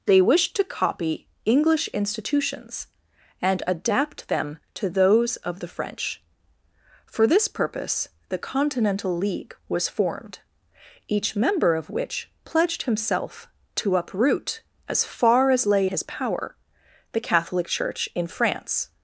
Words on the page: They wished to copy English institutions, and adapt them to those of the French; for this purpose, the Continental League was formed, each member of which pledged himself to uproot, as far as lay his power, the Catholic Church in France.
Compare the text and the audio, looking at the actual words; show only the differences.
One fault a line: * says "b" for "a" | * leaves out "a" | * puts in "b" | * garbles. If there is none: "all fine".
all fine